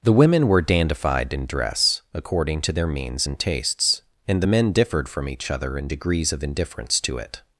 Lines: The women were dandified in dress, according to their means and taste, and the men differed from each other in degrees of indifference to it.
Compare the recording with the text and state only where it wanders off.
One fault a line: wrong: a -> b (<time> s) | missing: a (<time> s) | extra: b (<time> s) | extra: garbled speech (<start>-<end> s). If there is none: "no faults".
wrong: taste -> tastes (3.4 s)